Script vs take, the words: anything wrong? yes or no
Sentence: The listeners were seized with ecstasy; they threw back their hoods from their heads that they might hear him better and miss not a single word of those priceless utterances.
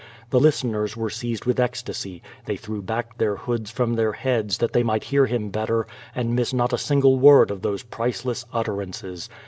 no